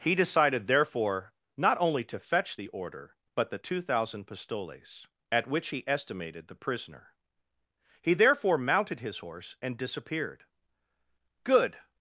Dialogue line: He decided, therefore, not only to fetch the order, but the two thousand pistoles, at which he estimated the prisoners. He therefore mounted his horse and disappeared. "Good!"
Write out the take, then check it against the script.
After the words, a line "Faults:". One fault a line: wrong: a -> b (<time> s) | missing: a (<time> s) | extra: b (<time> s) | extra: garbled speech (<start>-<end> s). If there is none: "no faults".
He decided, therefore, not only to fetch the order, but the two thousand pistoles, at which he estimated the prisoner. He therefore mounted his horse and disappeared. "Good!"
Faults:
wrong: prisoners -> prisoner (6.5 s)